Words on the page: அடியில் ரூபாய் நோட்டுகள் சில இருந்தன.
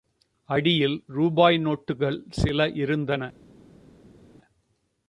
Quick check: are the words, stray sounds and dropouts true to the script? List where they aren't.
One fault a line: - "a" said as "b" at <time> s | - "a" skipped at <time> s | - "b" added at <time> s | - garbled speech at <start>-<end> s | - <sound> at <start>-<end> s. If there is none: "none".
none